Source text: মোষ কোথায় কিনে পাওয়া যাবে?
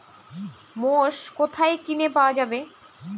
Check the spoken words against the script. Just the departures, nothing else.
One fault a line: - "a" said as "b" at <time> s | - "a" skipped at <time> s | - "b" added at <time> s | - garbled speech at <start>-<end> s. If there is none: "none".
none